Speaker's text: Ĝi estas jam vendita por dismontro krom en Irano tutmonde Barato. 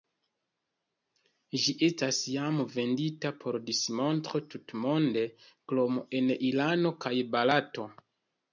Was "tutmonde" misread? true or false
true